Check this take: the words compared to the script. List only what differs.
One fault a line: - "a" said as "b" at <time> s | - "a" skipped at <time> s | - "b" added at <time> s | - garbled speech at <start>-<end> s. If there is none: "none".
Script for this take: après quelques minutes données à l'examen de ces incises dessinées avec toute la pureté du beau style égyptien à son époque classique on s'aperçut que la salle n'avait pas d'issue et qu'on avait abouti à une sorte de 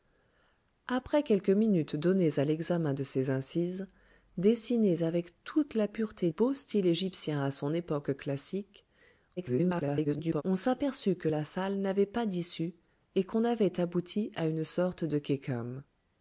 - "du" skipped at 6.3 s
- garbled speech at 9.4-10.4 s